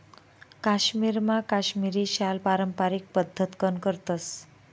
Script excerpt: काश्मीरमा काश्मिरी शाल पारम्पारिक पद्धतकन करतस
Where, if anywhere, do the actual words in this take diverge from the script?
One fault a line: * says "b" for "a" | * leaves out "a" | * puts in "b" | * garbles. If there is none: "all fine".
all fine